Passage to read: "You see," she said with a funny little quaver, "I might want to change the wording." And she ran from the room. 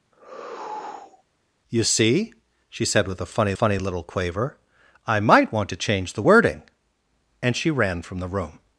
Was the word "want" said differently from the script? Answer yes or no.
no